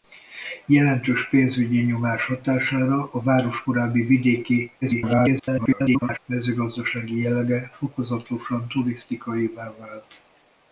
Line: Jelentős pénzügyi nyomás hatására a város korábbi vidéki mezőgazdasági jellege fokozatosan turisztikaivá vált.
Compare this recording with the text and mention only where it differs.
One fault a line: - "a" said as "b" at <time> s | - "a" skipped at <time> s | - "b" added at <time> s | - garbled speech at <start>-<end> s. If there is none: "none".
- garbled speech at 4.8-6.2 s